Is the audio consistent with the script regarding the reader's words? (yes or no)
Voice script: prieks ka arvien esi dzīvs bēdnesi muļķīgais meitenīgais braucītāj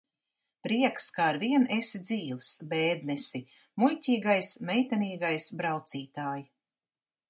yes